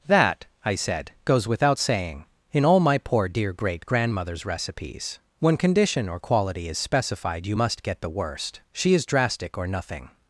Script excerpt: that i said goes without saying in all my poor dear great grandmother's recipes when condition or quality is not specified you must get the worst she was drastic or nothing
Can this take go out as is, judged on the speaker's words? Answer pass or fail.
fail